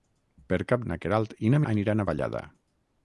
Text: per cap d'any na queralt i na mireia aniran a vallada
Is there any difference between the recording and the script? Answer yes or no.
yes